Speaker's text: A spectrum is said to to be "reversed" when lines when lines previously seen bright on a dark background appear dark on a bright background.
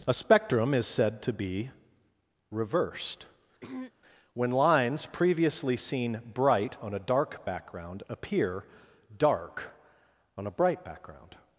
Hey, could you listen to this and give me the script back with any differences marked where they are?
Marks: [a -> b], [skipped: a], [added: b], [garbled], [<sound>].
A spectrum is said to [skipped: to] be "reversed" [throat clearing] when lines [skipped: when lines] previously seen bright on a dark background appear dark on a bright background.